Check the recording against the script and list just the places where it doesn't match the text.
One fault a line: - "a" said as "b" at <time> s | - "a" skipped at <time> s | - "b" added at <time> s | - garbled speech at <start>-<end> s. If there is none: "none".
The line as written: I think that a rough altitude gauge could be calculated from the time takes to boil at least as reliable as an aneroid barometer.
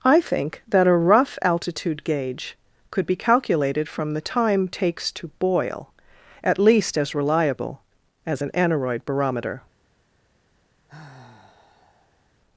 none